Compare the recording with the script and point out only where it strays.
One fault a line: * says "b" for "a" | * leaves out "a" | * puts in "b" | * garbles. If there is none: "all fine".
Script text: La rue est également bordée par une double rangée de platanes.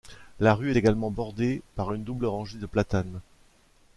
* leaves out "est"